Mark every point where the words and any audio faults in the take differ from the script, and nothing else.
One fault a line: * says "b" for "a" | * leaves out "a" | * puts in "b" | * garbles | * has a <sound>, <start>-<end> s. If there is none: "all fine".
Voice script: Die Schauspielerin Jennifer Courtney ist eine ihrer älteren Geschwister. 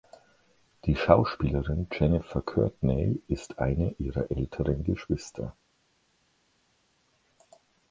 all fine